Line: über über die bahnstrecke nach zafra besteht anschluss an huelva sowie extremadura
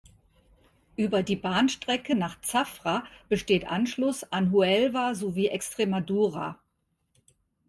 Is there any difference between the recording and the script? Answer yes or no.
yes